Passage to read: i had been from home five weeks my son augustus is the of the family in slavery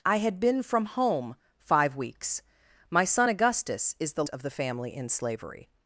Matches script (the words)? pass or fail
pass